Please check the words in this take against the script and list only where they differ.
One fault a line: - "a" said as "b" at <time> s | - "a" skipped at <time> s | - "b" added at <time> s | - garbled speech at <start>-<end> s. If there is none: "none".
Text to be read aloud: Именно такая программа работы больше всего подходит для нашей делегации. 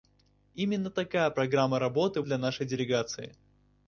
- "больше всего подходит" skipped at 2.2 s